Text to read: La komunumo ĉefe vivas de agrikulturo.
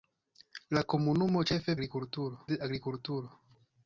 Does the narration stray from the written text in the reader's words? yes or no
yes